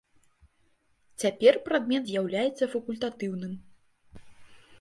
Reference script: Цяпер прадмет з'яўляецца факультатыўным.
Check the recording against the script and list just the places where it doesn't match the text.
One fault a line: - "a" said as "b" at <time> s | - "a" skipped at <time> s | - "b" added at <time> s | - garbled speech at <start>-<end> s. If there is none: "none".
none